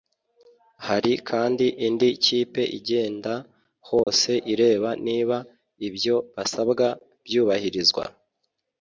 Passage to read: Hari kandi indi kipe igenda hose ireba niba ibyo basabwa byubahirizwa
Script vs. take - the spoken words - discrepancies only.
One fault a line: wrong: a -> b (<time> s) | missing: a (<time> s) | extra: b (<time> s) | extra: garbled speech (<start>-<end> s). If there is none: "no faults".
no faults